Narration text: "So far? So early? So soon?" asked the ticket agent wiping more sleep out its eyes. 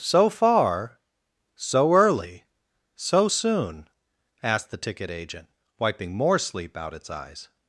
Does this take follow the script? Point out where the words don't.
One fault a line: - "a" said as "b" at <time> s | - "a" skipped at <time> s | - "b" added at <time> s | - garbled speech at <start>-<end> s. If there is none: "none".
none